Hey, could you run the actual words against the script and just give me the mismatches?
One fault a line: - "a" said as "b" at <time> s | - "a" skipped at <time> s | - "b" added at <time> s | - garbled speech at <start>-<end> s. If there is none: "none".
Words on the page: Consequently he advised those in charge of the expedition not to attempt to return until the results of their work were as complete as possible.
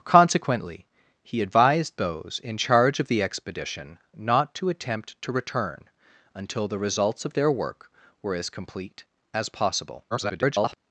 - garbled speech at 10.1-10.8 s